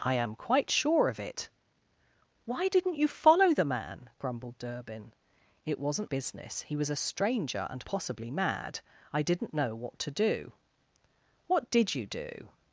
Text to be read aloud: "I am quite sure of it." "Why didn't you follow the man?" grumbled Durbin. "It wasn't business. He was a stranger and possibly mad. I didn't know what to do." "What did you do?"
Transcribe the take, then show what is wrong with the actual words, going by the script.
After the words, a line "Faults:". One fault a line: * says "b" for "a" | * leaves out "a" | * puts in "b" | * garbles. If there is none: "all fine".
"I am quite sure of it." "Why didn't you follow the man?" grumbled Durbin. "It wasn't business. He was a stranger and possibly mad. I didn't know what to do." "What did you do?"
Faults:
all fine